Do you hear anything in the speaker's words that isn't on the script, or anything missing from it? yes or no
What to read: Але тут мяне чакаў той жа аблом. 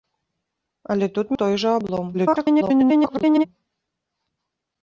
yes